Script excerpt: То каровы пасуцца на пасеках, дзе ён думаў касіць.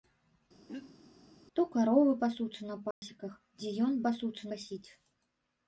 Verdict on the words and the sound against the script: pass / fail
fail